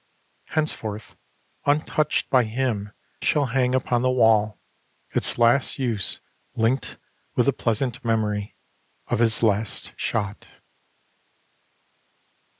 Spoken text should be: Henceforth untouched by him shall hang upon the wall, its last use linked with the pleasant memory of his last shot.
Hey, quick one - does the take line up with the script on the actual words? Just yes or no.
yes